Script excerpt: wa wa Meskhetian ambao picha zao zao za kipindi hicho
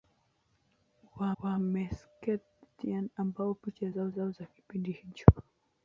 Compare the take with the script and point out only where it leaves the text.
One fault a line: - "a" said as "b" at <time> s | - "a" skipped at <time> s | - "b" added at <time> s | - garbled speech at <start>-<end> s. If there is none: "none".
none